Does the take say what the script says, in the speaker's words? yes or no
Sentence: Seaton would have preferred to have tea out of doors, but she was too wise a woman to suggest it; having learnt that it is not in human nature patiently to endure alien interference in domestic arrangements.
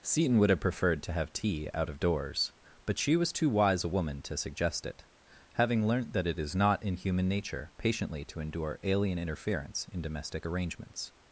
yes